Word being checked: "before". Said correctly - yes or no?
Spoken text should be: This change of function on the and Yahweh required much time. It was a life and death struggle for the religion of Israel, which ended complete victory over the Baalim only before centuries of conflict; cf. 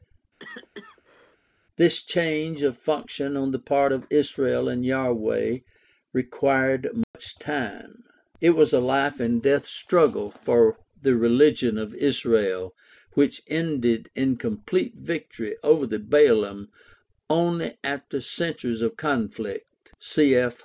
no